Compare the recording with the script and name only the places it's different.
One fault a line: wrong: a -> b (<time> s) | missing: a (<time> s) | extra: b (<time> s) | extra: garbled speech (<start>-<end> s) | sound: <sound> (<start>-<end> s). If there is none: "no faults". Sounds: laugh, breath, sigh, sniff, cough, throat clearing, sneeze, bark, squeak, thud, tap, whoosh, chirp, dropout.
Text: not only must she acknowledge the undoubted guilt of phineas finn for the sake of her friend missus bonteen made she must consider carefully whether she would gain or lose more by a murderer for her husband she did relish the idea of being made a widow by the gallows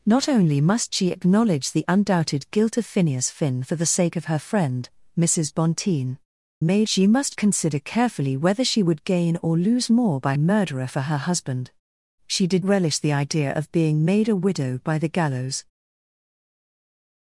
no faults